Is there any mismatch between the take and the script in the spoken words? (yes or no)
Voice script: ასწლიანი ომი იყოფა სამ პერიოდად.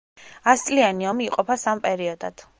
no